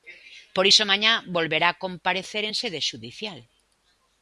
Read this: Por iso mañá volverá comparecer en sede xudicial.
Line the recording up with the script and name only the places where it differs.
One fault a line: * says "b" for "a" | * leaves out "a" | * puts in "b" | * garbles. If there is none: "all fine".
all fine